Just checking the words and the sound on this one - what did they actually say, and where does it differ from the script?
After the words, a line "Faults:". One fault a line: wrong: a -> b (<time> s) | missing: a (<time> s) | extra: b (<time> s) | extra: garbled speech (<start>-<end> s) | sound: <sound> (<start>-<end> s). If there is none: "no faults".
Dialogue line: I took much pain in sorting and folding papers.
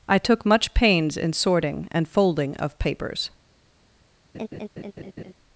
I took much pains in sorting and folding of papers.
Faults:
wrong: pain -> pains (0.7 s)
extra: of (2.6 s)
sound: laugh (4.3-5.3 s)